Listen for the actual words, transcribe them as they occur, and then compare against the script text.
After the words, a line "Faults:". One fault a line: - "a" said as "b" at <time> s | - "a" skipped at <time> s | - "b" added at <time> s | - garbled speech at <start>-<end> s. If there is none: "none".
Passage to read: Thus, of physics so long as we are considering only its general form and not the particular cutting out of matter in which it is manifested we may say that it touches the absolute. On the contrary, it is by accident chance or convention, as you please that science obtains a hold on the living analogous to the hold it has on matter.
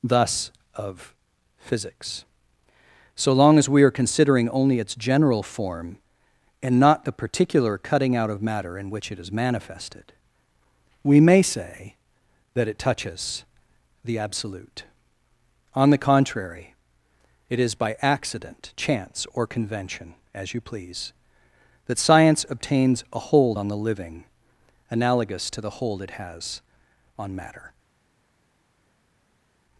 Thus, of physics so long as we are considering only its general form and not the particular cutting out of matter in which it is manifested we may say that it touches the absolute. On the contrary, it is by accident chance or convention, as you please that science obtains a hold on the living analogous to the hold it has on matter.
Faults:
none